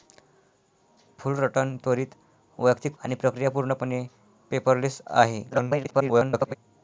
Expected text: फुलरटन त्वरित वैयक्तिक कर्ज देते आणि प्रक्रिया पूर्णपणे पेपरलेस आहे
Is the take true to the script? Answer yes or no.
no